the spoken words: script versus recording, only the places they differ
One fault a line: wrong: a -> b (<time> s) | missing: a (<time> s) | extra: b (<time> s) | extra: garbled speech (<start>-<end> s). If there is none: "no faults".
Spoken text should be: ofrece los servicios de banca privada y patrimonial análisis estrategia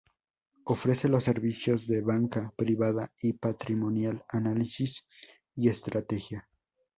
extra: y (5.6 s)